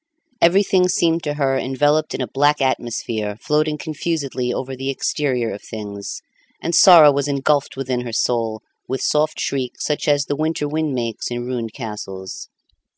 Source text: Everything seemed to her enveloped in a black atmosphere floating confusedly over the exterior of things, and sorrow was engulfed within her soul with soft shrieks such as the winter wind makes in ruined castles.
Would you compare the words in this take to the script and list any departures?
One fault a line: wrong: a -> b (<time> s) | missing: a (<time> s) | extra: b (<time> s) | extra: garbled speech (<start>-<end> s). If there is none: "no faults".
no faults